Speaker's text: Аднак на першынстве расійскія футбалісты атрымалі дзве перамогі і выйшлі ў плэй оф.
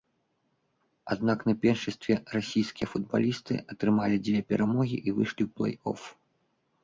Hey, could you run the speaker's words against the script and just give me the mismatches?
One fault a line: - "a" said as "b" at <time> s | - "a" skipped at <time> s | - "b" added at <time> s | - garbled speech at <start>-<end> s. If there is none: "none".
none